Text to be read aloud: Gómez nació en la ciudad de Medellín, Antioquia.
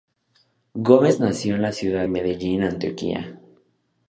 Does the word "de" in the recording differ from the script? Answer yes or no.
yes